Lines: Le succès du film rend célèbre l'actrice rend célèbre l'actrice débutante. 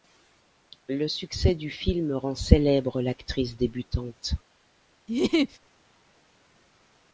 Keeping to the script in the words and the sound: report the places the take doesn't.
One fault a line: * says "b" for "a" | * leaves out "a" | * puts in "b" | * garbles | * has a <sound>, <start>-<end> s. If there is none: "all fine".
* leaves out "rend célèbre l'actrice"
* has a laugh, 5.1-5.6 s